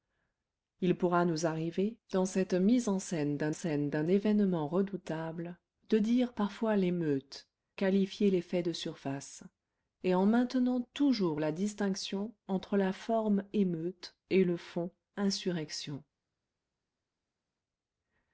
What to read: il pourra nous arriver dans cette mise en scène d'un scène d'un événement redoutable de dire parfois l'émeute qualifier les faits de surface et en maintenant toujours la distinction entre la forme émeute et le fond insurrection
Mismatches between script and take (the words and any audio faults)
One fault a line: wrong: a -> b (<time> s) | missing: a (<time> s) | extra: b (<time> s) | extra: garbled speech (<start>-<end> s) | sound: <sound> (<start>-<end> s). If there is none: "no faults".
no faults